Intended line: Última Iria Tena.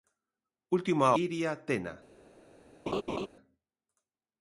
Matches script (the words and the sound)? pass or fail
fail